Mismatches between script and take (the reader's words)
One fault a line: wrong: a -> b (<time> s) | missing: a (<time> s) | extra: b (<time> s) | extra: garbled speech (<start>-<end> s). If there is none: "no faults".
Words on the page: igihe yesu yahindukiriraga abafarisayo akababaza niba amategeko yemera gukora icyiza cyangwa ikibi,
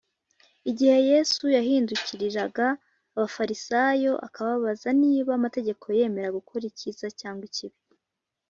no faults